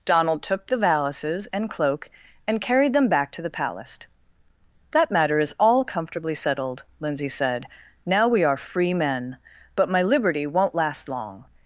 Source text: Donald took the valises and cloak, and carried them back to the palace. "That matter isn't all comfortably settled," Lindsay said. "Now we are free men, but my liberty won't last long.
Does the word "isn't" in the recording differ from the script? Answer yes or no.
yes